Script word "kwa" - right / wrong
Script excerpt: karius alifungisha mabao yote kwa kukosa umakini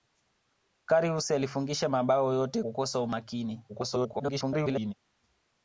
wrong